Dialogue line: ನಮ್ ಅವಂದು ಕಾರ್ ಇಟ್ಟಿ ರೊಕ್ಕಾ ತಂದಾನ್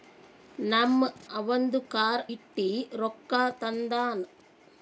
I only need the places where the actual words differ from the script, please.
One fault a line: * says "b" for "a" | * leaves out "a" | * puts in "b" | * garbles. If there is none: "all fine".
all fine